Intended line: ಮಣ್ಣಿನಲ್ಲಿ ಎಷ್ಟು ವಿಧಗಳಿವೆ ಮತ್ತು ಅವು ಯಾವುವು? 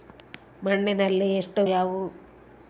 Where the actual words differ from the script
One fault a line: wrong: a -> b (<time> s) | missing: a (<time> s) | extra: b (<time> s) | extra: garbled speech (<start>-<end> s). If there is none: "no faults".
missing: ವಿಧಗಳಿವೆ ಮತ್ತು ಅವು (1.6 s)